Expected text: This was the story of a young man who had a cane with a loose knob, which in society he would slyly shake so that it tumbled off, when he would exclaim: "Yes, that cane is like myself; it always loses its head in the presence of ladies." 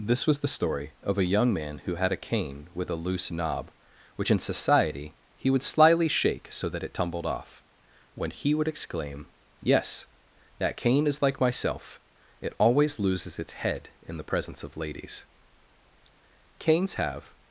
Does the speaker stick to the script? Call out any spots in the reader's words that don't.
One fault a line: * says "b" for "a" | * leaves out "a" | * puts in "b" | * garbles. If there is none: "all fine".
* puts in "Canes have"